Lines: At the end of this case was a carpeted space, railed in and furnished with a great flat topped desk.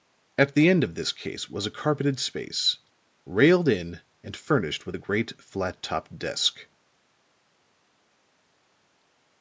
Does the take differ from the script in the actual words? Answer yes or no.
no